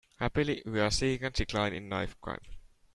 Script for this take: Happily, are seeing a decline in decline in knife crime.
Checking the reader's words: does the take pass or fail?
fail